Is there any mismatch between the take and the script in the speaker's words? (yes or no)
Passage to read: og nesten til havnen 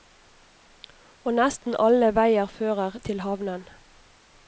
yes